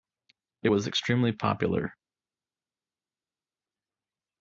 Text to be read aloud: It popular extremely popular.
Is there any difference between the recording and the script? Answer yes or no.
yes